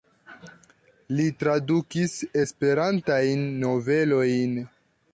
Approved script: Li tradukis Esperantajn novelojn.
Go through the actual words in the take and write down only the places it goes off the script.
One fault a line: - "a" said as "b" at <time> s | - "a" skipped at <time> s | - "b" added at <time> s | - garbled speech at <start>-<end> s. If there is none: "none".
none